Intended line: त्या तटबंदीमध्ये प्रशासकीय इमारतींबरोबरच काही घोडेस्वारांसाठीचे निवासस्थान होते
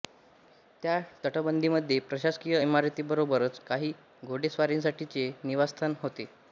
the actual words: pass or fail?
pass